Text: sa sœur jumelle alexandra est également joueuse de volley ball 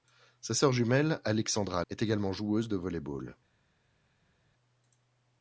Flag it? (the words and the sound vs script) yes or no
no